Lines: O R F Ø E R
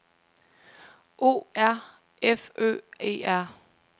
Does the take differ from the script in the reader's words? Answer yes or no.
no